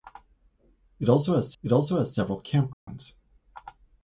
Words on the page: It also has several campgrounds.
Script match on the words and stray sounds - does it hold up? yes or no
no